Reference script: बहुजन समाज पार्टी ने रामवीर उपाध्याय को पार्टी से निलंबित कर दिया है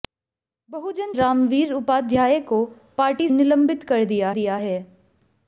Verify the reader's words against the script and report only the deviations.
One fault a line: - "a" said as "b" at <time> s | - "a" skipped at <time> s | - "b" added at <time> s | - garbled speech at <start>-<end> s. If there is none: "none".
- "समाज पार्टी ने" skipped at 1.1 s
- "से" skipped at 3.3 s
- "दिया" added at 4.3 s